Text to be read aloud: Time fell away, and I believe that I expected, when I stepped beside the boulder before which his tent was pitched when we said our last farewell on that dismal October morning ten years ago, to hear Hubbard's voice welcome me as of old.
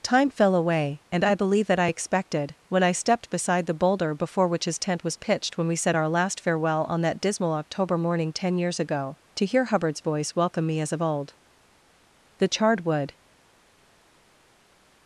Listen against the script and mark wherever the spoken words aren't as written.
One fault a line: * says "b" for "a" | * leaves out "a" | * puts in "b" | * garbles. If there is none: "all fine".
* puts in "The charred wood"